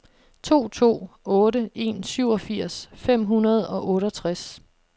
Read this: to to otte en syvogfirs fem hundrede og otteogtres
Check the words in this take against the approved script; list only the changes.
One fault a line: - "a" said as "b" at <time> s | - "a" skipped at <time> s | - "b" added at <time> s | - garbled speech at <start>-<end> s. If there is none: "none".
none